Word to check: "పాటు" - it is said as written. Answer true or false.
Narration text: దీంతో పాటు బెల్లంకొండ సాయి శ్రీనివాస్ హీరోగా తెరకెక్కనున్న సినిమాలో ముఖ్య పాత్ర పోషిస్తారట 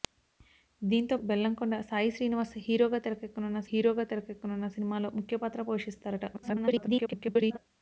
false